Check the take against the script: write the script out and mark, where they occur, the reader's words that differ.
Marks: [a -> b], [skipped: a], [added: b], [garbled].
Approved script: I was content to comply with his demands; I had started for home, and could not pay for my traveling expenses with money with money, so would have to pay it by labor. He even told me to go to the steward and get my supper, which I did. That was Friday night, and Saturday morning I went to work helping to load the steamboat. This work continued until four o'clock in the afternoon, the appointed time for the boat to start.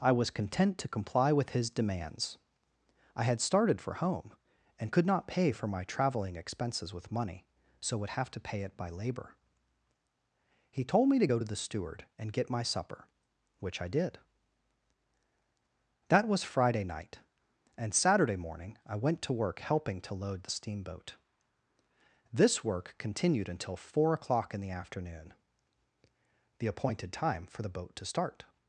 I was content to comply with his demands; I had started for home, and could not pay for my traveling expenses with money [skipped: with money,] so would have to pay it by labor. He [skipped: even] told me to go to the steward and get my supper, which I did. That was Friday night, and Saturday morning I went to work helping to load the steamboat. This work continued until four o'clock in the afternoon, the appointed time for the boat to start.